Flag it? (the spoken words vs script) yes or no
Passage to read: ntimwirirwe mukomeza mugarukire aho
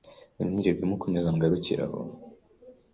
no